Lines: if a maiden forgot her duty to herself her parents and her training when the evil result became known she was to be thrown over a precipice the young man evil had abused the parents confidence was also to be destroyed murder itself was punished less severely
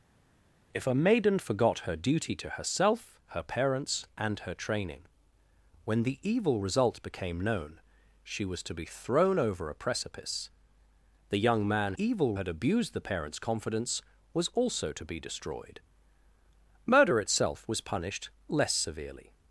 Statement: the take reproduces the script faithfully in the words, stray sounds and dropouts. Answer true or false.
true